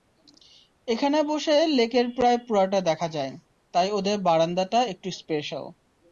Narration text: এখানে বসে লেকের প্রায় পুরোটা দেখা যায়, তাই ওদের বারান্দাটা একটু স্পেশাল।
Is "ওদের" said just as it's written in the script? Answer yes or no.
yes